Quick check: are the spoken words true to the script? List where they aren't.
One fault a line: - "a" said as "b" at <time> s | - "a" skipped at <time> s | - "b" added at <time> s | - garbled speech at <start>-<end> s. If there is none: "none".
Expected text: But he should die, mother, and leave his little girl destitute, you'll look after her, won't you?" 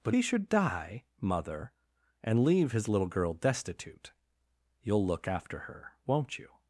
none